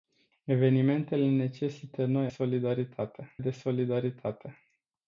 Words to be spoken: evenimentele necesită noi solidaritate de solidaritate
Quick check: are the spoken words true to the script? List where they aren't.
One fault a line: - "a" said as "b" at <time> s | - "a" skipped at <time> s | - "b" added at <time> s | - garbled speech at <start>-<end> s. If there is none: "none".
none